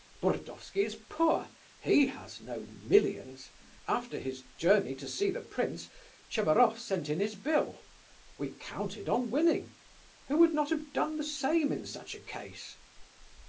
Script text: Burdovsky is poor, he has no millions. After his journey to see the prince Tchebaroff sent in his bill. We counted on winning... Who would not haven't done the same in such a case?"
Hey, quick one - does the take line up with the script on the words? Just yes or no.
no